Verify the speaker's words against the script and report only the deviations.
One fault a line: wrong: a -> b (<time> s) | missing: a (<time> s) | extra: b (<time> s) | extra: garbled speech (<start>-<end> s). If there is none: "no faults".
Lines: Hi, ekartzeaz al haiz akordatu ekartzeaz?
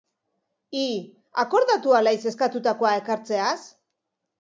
wrong: ekartzeaz -> akordatu (1.4 s)
wrong: akordatu -> eskatutakoa (2.3 s)